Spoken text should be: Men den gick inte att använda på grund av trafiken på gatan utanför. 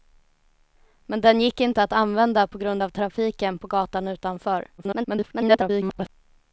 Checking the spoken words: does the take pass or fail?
fail